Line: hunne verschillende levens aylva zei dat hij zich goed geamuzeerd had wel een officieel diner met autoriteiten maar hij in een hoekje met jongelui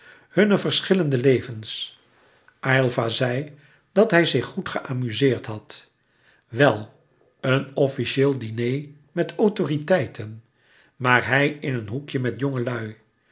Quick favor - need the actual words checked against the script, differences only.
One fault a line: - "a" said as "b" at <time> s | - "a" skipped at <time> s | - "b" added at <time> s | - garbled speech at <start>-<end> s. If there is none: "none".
none